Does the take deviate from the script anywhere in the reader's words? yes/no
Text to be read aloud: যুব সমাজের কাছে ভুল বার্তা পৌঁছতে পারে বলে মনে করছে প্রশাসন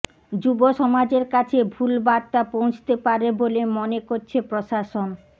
no